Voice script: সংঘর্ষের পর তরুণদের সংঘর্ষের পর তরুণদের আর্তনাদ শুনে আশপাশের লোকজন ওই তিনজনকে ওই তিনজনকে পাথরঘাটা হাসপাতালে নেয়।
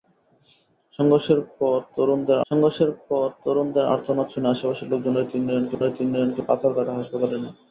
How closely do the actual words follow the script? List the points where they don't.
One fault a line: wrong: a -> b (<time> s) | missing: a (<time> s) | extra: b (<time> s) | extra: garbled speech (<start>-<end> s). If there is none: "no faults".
no faults